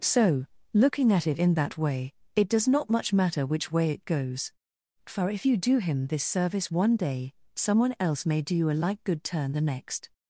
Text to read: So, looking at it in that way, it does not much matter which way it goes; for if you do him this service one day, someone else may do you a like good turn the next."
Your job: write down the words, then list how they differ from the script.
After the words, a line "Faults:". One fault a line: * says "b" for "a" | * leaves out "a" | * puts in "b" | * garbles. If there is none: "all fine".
So, looking at it in that way, it does not much matter which way it goes; for if you do him this service one day, someone else may do you a like good turn the next."
Faults:
all fine